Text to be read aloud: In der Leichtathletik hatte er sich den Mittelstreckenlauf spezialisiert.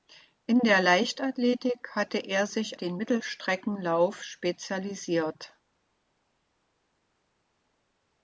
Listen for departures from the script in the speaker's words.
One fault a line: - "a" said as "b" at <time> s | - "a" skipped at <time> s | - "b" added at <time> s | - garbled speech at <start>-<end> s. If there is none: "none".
none